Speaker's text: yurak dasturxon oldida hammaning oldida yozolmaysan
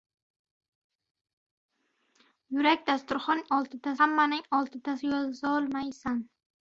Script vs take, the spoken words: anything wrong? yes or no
no